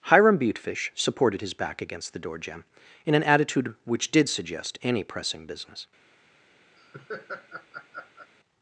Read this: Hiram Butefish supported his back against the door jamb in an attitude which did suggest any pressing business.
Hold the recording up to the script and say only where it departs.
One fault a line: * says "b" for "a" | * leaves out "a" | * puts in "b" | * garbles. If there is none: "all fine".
all fine